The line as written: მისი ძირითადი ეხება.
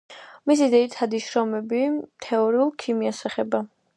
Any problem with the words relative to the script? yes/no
yes